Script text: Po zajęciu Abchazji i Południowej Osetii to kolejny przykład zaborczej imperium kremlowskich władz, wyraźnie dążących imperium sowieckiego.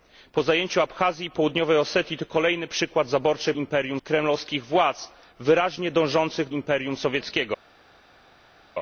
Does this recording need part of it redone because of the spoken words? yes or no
no